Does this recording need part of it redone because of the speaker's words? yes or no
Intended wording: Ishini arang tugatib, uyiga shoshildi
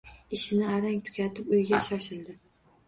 no